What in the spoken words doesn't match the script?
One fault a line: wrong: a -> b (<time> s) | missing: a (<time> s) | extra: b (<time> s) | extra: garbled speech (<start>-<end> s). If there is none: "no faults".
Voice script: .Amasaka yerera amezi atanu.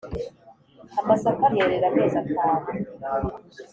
no faults